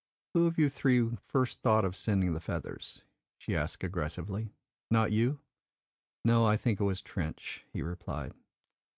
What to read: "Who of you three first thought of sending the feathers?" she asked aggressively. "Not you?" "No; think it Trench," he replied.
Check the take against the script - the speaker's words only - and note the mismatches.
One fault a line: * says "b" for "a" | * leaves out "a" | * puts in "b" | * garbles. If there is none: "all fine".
* puts in "I"
* puts in "was"